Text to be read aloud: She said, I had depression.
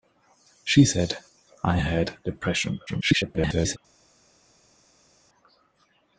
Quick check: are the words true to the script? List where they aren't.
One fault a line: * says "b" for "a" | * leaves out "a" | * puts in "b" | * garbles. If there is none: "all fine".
* garbles